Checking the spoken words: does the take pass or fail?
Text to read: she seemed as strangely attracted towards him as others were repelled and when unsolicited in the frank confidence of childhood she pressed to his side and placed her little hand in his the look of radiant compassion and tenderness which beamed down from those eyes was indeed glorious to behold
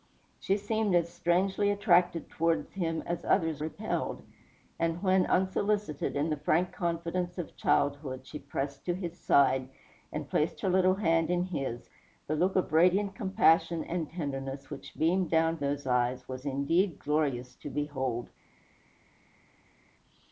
fail